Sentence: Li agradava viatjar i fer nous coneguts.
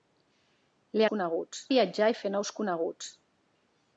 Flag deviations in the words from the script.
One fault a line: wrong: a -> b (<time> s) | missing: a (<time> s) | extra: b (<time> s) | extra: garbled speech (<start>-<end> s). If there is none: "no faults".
wrong: agradava -> coneguts (1.1 s)